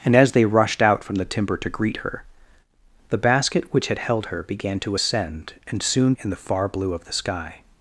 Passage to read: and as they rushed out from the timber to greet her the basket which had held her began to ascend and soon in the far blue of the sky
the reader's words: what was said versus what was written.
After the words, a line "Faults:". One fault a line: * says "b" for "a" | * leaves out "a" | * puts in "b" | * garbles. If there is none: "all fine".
and as they rushed out from the timber to greet her the basket which had held her began to ascend and soon in the far blue of the sky
Faults:
all fine